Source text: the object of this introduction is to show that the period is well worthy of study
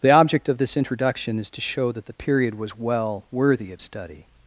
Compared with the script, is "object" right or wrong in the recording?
right